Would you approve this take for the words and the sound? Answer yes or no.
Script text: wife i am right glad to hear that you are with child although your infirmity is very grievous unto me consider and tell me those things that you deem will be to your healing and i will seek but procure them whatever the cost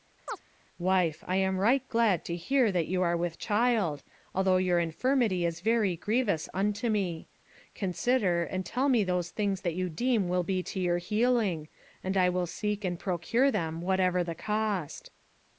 no